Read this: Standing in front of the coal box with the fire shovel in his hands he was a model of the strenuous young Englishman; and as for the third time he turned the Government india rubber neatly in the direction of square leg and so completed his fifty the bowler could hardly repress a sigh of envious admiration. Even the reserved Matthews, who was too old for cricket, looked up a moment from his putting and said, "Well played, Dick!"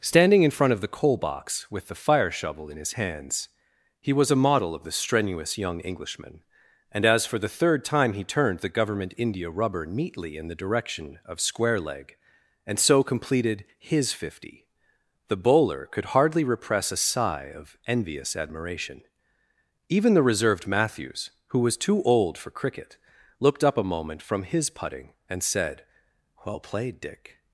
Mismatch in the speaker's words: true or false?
false